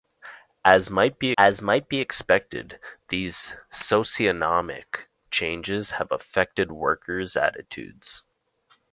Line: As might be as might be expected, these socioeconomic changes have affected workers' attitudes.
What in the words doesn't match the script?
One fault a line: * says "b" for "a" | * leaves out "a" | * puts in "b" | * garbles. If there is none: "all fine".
all fine